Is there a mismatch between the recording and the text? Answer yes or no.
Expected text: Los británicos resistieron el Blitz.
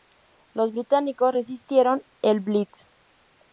no